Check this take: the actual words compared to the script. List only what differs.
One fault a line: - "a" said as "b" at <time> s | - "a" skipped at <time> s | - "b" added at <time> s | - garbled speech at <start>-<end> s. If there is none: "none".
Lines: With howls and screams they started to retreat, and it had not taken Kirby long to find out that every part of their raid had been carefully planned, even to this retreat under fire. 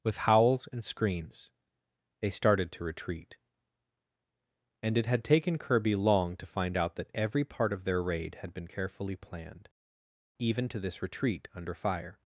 - "not" skipped at 5.2 s